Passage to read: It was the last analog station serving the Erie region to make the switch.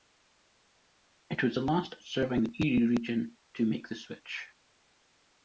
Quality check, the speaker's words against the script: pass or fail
fail